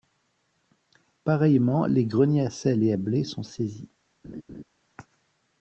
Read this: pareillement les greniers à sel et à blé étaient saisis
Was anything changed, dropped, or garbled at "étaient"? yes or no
yes